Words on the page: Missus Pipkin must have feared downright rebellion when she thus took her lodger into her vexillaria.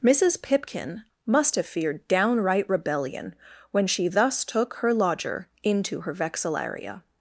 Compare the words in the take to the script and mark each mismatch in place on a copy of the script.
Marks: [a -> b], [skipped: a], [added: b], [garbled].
Missus Pipkin must have feared downright rebellion when she thus took her lodger into her vexillaria.